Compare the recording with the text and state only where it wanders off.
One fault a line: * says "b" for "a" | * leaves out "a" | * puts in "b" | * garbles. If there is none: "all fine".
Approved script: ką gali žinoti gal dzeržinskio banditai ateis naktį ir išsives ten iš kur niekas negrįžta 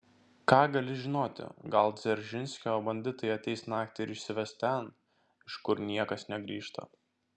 all fine